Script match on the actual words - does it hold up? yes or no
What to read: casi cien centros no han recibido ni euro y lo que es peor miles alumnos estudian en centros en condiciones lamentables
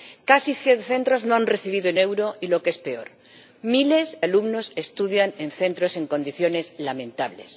yes